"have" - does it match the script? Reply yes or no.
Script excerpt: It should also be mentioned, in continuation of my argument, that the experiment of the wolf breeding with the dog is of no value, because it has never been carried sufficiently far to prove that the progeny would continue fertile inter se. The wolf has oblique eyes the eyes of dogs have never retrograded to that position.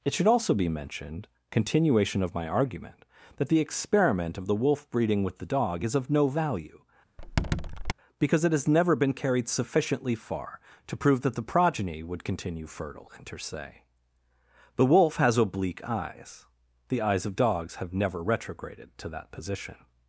yes